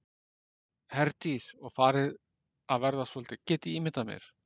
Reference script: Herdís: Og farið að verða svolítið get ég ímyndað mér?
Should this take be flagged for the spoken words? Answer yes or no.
no